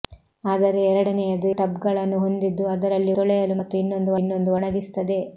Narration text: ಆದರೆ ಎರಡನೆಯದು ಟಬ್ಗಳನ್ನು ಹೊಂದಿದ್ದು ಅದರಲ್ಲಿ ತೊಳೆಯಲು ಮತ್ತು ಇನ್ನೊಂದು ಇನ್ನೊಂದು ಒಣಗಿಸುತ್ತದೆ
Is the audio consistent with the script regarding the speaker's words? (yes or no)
yes